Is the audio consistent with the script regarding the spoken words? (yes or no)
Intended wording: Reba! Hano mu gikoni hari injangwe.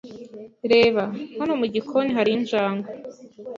yes